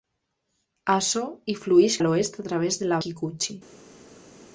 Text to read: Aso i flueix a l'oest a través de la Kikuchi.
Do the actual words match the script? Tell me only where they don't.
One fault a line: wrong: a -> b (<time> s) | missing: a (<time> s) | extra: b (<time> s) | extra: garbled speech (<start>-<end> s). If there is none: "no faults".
no faults